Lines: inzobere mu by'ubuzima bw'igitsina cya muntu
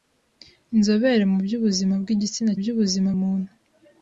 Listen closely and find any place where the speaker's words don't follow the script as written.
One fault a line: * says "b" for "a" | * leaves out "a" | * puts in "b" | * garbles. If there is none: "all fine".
* says "by'ubuzima" for "cya"